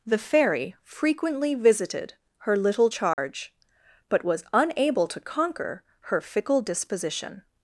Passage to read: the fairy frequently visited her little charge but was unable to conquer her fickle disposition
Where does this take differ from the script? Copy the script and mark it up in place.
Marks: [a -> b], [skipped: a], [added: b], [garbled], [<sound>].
the fairy frequently visited her little charge [dropout] but was unable to conquer her fickle disposition